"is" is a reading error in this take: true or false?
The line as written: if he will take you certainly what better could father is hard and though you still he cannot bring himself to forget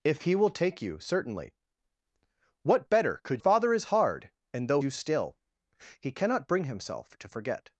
false